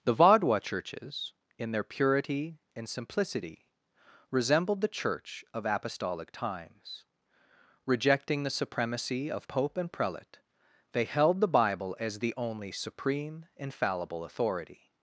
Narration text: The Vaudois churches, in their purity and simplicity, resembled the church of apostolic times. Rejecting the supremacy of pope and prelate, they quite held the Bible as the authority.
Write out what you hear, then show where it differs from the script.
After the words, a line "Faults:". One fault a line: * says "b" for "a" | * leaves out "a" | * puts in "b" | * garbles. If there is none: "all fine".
The Vaudois churches, in their purity and simplicity, resembled the church of apostolic times. Rejecting the supremacy of pope and prelate, they held the Bible as the only supreme, infallible authority.
Faults:
* leaves out "quite"
* puts in "only supreme infallible"